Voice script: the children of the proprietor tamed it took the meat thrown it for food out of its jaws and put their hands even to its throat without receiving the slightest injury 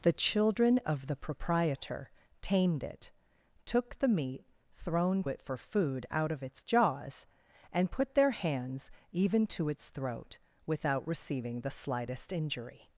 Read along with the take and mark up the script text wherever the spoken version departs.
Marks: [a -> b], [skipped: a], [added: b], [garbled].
the children of the proprietor tamed it took the meat thrown it for food out of its jaws and put their hands even to its throat without receiving the slightest injury